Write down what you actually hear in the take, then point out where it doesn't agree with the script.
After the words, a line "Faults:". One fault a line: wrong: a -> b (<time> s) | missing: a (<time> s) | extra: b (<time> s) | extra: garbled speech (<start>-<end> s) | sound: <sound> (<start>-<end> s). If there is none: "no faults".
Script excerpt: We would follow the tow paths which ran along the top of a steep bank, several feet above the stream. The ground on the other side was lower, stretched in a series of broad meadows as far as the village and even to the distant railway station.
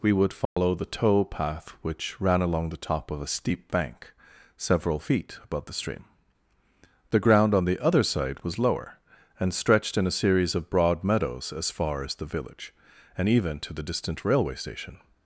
We would follow the tow path which ran along the top of a steep bank, several feet above the stream. The ground on the other side was lower, and stretched in a series of broad meadows as far as the village and even to the distant railway station.
Faults:
sound: dropout (0.5-0.6 s)
wrong: paths -> path (1.2 s)
extra: and (9.4 s)